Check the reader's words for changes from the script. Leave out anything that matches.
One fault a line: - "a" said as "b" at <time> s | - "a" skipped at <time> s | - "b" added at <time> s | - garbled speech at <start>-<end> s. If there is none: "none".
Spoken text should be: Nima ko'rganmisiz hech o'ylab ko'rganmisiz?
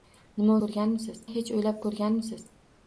none